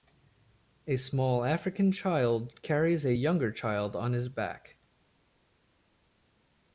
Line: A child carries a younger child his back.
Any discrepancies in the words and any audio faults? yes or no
yes